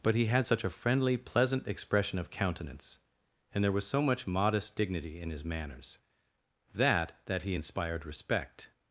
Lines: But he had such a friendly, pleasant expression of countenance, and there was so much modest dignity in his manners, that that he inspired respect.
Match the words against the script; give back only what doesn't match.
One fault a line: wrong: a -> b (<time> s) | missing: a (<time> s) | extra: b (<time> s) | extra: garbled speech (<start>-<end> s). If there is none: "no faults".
no faults